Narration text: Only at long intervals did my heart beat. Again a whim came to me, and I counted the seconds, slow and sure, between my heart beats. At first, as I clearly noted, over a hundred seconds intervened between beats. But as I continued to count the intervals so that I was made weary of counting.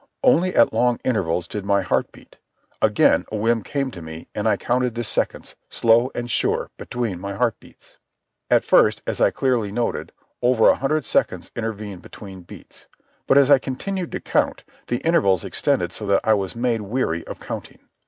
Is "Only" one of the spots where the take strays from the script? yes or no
no